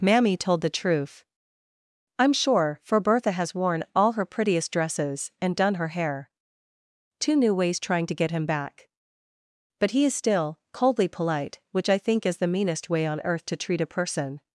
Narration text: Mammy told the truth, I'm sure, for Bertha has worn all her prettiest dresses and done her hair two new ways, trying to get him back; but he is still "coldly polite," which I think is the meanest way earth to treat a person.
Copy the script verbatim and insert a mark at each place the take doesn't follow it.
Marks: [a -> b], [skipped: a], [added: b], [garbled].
Mammy told the truth, I'm sure, for Bertha has worn all her prettiest dresses and done her hair two new ways, trying to get him back; but he is still "coldly polite," which I think is the meanest way [added: on] earth to treat a person.